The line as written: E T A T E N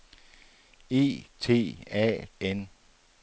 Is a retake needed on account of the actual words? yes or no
yes